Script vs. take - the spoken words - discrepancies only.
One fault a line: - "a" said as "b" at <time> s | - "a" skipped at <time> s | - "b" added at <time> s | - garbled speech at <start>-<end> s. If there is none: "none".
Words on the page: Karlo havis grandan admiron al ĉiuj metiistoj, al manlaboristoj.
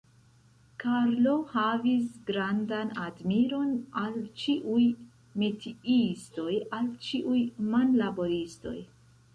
- "ĉiuj" added at 7.1 s